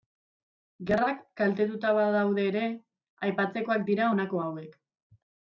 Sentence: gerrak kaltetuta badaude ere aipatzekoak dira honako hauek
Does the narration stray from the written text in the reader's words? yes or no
no